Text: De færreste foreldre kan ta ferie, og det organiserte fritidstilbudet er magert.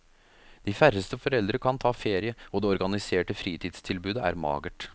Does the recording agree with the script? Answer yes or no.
yes